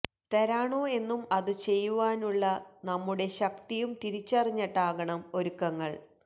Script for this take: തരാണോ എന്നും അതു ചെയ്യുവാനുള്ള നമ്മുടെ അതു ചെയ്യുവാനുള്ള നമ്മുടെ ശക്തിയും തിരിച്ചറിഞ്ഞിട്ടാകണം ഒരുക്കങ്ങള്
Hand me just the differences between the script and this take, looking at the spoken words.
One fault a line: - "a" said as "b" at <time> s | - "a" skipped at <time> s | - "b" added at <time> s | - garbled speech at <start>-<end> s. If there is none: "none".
- "അതു ചെയ്യുവാനുള്ള നമ്മുടെ" skipped at 3.3 s